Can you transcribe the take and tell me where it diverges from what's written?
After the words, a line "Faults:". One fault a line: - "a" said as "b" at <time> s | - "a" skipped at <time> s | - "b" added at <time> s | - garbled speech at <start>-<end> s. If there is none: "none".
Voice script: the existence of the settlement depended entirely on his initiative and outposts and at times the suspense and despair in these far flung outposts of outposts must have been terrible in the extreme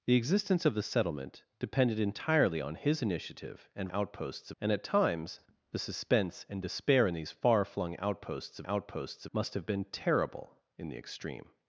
the existence of the settlement depended entirely on his initiative and outposts and at times the suspense and despair in these far flung outposts of outposts must have been terrible in the extreme
Faults:
none